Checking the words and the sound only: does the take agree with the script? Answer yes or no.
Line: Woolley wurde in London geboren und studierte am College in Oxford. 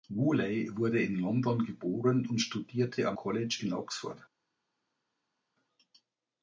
yes